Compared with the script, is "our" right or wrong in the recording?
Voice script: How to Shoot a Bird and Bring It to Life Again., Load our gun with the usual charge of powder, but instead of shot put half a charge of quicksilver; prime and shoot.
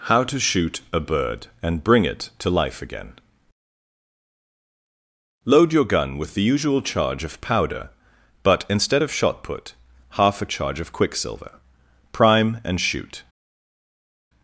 wrong